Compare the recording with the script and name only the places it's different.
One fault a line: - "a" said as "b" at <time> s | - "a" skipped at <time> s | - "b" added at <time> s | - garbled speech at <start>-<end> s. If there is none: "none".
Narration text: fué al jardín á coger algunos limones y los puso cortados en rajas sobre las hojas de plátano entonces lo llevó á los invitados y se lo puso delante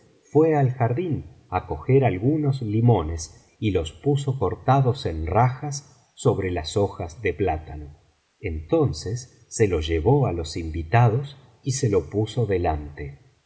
- "se" added at 9.5 s